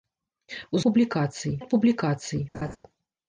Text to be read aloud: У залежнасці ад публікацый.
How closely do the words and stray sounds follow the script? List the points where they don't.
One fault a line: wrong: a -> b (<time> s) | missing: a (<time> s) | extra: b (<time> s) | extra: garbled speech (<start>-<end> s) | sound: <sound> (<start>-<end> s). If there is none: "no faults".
wrong: залежнасці -> публікацый (0.9 s)
sound: laugh (2.5-2.8 s)